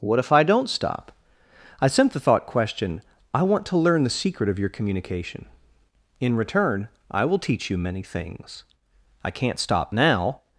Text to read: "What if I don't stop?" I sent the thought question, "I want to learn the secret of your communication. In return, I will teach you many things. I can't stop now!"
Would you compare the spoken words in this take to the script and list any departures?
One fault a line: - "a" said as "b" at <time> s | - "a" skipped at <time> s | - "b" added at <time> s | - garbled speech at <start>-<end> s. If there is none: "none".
none